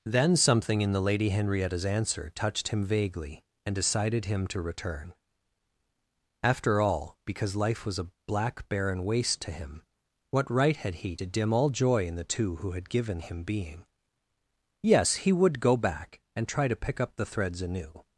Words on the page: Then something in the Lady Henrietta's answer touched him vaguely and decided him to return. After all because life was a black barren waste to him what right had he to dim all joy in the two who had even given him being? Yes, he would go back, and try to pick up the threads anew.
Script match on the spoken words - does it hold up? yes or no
no